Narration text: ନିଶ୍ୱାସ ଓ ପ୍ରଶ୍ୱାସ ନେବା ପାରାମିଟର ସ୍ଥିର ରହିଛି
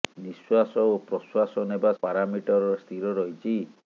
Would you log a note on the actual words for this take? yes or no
no